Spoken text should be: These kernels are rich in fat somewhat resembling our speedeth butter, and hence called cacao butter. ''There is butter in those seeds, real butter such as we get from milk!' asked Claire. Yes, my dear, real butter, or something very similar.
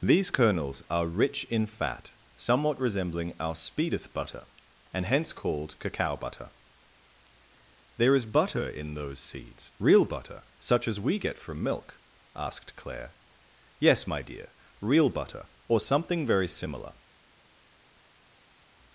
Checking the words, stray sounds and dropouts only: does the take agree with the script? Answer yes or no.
yes